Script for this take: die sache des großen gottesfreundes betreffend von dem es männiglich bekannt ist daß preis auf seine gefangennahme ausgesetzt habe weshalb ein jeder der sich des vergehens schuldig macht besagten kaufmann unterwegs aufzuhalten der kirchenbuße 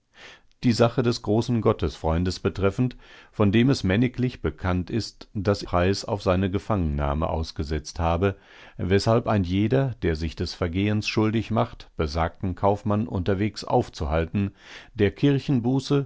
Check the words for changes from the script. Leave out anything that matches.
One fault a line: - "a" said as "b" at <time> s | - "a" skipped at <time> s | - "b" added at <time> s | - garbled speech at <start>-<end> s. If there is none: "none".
none